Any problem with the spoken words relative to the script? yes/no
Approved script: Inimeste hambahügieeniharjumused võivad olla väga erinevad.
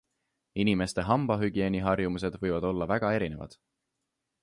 no